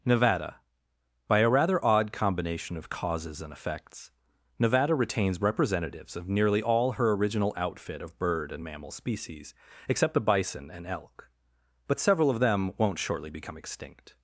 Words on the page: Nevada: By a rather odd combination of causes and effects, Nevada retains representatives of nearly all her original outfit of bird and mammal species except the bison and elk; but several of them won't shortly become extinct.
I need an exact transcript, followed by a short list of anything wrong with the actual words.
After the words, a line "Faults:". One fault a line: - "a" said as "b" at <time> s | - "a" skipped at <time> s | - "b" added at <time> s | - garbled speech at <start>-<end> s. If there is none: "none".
Nevada: By a rather odd combination of causes and effects, Nevada retains representatives of nearly all her original outfit of bird and mammal species except the bison and elk; but several of them won't shortly become extinct.
Faults:
none